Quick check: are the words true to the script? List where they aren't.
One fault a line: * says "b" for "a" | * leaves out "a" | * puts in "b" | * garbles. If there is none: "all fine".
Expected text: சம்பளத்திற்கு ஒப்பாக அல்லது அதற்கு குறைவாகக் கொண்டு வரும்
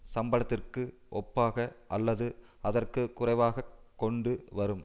all fine